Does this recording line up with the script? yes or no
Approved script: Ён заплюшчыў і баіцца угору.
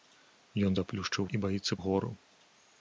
yes